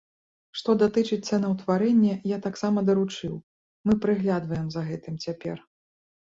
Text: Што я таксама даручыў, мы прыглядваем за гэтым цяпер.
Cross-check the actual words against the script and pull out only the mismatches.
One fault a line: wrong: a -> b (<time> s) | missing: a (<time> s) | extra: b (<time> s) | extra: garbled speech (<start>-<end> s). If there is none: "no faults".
extra: датычыць цэнаўтварэння (0.8 s)